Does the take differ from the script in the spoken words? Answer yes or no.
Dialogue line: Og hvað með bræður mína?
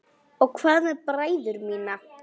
no